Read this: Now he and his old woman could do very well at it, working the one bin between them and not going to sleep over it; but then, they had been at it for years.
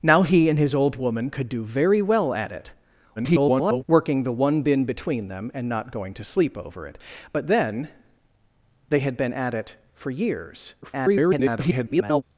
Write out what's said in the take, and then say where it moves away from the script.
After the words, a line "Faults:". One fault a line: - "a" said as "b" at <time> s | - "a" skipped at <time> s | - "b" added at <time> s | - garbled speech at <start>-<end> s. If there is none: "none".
Now he and his old woman could do very well at it, [garbled] working the one bin between them and not going to sleep over it; but then, they had been at it for years. [garbled]
Faults:
- garbled speech at 3.2-3.8 s
- garbled speech at 10.8-12.2 s